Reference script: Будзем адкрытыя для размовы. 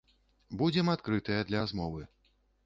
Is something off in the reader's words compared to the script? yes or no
no